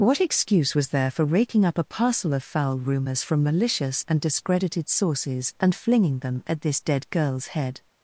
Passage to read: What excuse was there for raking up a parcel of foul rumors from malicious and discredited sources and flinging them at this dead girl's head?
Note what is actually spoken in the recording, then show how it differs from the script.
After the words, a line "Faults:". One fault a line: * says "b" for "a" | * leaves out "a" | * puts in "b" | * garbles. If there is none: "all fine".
What excuse was there for raking up a parcel of foul rumors from malicious and discredited sources and flinging them at this dead girl's head?
Faults:
all fine